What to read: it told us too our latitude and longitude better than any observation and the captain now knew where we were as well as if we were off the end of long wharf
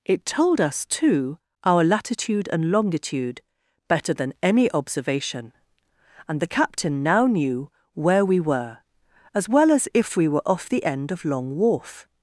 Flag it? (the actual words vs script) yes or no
no